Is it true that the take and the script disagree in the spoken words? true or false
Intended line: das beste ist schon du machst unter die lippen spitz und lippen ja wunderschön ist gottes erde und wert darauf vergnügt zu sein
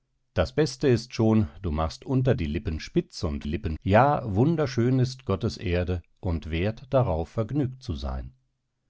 false